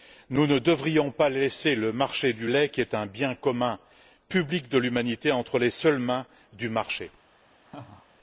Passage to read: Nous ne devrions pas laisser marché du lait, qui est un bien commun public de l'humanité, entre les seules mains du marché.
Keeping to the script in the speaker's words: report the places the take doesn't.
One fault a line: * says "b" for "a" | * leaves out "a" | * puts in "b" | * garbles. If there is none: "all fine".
* puts in "le"